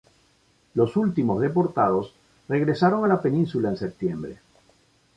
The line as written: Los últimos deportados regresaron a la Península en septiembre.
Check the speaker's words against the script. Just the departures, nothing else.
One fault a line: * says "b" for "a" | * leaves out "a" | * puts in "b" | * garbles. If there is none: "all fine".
all fine